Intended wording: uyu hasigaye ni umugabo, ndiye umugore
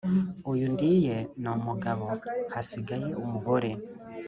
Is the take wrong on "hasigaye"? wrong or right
wrong